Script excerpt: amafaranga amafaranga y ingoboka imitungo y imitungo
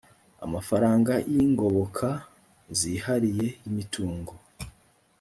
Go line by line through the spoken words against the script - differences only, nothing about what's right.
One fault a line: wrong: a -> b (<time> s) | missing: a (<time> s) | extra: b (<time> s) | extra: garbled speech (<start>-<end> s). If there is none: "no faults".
missing: amafaranga (1.1 s)
wrong: imitungo -> zihariye (2.8 s)